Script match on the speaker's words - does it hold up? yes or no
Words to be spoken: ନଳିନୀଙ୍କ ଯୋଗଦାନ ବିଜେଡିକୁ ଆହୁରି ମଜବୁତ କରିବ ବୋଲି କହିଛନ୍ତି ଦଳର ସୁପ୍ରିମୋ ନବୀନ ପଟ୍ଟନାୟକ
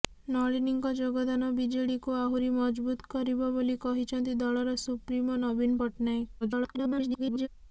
no